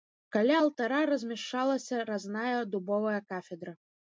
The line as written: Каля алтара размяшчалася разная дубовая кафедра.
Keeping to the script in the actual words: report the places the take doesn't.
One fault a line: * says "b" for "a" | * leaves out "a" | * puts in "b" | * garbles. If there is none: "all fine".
all fine